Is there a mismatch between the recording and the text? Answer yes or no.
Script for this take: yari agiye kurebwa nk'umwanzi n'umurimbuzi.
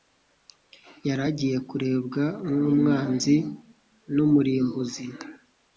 no